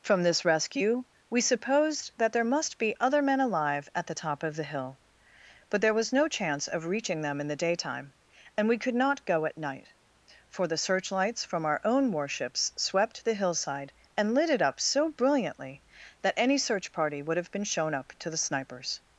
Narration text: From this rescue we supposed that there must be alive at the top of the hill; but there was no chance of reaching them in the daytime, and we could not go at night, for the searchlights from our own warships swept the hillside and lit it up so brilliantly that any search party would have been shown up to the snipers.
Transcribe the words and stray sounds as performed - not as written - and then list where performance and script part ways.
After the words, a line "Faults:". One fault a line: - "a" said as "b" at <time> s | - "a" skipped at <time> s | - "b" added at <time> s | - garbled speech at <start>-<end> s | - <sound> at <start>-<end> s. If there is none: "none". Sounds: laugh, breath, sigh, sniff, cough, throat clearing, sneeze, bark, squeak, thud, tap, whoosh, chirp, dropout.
From this rescue we supposed that there must be other men alive at the top of the hill; but there was no chance of reaching them in the daytime, and we could not go at night, for the searchlights from our own warships swept the hillside and lit it up so brilliantly that any search party would have been shown up to the snipers.
Faults:
- "other men" added at 3.0 s